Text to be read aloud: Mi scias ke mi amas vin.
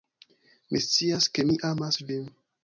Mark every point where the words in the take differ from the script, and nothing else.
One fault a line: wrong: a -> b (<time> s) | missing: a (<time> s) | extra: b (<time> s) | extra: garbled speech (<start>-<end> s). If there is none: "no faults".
no faults